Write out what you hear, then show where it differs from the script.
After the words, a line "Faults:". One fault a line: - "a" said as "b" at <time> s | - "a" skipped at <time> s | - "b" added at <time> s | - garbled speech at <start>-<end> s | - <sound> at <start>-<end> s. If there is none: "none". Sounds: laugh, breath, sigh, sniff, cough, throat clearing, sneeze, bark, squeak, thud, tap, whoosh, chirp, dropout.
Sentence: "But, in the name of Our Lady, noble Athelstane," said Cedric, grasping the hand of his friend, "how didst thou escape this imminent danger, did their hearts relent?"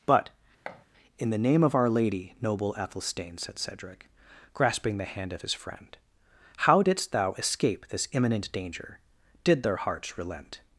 "But, in the name of Our Lady, noble Athelstane," said Cedric, grasping the hand of his friend, "how didst thou escape this imminent danger, did their hearts relent?"
Faults:
- thud at 0.7-0.9 s